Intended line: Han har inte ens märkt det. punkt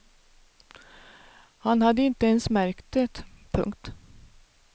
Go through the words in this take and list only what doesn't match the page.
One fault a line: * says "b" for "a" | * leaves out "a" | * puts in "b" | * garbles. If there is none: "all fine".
* says "hade" for "har"